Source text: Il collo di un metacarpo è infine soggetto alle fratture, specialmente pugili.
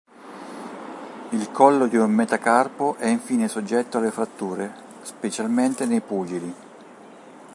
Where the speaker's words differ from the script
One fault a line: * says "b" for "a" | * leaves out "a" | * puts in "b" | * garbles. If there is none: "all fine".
* puts in "nei"